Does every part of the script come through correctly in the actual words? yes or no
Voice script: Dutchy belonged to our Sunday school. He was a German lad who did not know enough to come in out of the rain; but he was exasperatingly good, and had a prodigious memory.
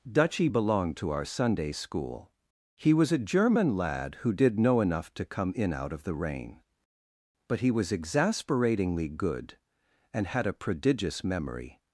no